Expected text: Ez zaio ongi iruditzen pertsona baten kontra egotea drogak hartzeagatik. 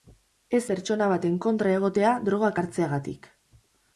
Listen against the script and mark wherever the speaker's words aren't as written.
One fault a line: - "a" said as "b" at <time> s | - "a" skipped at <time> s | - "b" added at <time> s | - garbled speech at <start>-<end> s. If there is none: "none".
- "zaio ongi iruditzen" skipped at 0.6 s